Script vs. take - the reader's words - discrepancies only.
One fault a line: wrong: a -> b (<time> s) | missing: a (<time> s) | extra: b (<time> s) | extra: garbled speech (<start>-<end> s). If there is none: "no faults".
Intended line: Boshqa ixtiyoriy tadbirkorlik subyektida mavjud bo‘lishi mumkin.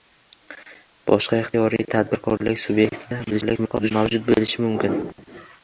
extra: garbled speech (3.3-3.9 s)